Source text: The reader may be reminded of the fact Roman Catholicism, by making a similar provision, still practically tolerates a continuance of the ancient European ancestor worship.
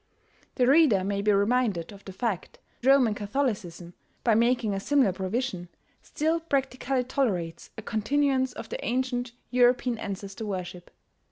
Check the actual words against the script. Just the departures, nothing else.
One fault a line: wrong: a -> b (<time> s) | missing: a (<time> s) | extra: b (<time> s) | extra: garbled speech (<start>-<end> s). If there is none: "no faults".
no faults